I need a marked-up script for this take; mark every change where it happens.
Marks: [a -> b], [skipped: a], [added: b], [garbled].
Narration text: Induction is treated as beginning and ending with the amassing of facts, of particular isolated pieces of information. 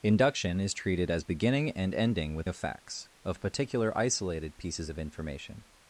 Induction is treated as beginning and ending with [skipped: the amassing] of facts, of particular isolated pieces of information.